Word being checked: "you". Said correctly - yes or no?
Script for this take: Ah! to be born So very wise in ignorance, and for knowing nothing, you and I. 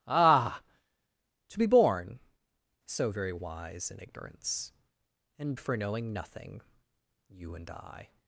yes